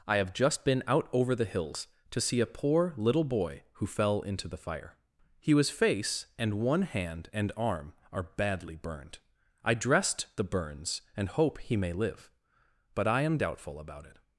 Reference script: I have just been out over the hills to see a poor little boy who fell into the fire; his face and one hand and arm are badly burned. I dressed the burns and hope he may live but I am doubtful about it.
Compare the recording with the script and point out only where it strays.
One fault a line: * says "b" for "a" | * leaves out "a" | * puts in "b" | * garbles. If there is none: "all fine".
all fine